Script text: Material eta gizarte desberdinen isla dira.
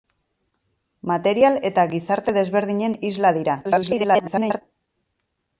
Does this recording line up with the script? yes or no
no